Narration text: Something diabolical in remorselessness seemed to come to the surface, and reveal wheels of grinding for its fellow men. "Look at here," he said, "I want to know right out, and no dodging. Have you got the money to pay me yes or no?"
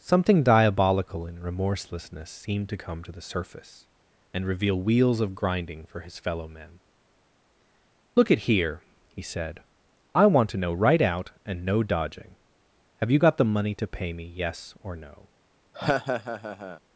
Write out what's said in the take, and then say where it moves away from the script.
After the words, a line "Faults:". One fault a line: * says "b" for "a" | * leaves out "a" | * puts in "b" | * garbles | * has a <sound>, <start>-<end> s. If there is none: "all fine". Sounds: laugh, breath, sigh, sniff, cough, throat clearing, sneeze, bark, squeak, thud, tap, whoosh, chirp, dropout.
Something diabolical in remorselessness seemed to come to the surface, and reveal wheels of grinding for his fellow men. "Look at here," he said, "I want to know right out, and no dodging. Have you got the money to pay me yes or no?"
Faults:
* says "his" for "its"
* has a laugh, 15.7-16.8 s